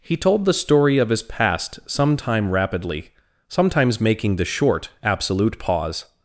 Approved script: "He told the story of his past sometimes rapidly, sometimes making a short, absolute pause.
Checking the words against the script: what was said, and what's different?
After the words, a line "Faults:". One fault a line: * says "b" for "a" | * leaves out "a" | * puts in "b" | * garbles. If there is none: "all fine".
"He told the story of his past sometime rapidly, sometimes making the short, absolute pause.
Faults:
* says "sometime" for "sometimes"
* says "the" for "a"